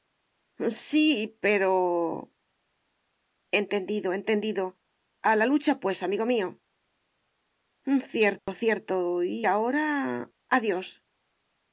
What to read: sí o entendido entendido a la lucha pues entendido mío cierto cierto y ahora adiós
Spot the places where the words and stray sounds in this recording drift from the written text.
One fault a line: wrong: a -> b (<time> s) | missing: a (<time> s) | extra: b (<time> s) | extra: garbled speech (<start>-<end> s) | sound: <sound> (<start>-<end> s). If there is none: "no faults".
wrong: o -> pero (1.4 s)
wrong: entendido -> amigo (6.0 s)
sound: dropout (8.4-8.5 s)